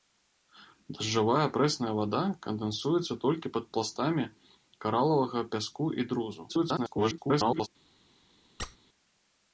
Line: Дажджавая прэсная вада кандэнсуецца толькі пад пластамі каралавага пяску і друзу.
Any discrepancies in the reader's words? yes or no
yes